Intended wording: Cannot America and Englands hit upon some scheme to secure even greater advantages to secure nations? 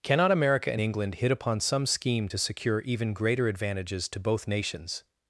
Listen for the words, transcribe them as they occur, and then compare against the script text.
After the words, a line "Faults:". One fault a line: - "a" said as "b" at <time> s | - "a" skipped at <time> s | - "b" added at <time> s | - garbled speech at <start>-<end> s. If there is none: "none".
Cannot America and England hit upon some scheme to secure even greater advantages to both nations?
Faults:
- "Englands" said as "England" at 0.8 s
- "secure" said as "both" at 4.2 s